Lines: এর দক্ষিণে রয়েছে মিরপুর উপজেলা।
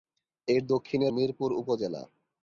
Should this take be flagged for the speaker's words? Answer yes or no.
yes